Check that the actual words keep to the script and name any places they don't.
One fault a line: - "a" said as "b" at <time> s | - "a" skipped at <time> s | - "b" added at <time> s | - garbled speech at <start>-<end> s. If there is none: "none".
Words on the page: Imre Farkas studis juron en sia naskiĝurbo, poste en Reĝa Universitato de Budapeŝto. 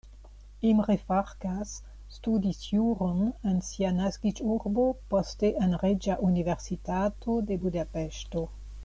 none